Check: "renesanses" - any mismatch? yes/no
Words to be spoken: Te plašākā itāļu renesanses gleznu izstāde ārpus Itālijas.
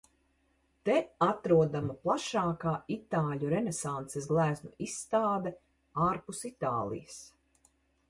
no